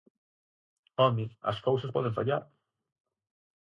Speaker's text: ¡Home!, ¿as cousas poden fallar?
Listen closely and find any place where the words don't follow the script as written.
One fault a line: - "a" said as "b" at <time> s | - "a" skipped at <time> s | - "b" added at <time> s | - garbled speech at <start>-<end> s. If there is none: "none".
none